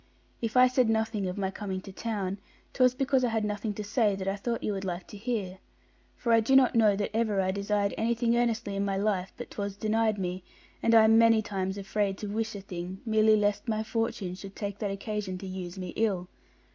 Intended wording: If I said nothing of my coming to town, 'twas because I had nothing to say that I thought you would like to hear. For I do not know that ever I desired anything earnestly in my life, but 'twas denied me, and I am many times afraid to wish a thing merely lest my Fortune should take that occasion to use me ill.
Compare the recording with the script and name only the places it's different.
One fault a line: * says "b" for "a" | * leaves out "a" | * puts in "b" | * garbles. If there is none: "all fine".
all fine